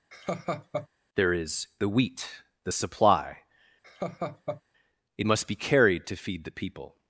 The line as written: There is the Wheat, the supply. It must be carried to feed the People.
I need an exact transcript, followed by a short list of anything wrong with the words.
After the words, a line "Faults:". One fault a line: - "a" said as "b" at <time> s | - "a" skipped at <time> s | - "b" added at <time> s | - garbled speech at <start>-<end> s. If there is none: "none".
There is the Wheat, the supply. It must be carried to feed the People.
Faults:
none